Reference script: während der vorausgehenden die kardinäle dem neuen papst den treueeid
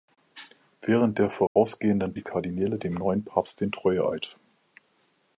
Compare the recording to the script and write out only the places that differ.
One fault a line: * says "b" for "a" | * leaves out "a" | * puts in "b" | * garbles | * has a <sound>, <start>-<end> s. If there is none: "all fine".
* has a dropout, 1.5-1.6 s